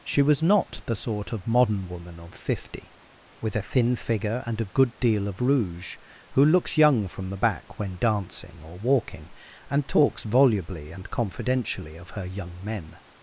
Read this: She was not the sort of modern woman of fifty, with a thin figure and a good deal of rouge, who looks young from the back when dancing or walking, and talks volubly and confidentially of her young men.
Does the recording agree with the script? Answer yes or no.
yes